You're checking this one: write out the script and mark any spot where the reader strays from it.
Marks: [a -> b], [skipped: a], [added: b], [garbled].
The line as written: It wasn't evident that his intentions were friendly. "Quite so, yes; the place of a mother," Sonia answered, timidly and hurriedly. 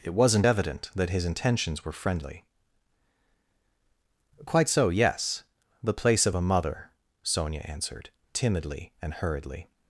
It wasn't evident that his intentions were friendly. "Quite so, yes; the place of a mother," Sonia answered, timidly and hurriedly.